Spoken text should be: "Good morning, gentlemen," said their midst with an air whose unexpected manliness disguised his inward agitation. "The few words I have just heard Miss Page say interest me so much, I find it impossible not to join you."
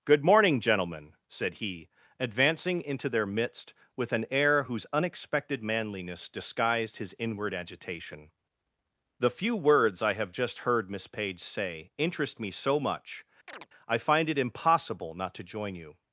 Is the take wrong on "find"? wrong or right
right